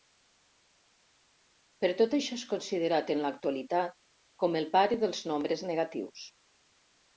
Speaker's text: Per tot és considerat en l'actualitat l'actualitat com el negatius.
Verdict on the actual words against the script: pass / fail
fail